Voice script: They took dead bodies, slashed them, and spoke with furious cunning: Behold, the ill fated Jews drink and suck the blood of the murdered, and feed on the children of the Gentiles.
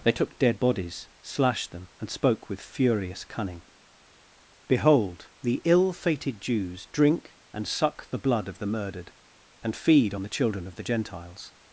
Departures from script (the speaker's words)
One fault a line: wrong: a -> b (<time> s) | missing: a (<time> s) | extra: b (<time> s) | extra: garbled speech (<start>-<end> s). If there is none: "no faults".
no faults